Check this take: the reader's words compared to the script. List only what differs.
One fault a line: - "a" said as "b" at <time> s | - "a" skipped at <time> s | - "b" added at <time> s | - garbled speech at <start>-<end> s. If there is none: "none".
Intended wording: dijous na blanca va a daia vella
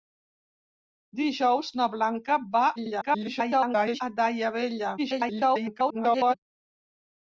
- garbled speech at 2.8-4.0 s
- garbled speech at 5.0-6.3 s